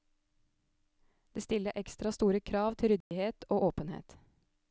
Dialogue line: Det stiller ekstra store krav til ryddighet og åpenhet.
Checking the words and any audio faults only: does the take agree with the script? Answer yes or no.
no